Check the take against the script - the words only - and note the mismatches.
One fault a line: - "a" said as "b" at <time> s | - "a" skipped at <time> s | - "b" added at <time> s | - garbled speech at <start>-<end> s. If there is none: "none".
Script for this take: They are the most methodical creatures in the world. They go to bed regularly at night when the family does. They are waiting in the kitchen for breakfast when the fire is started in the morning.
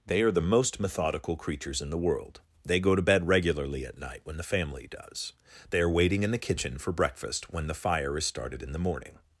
none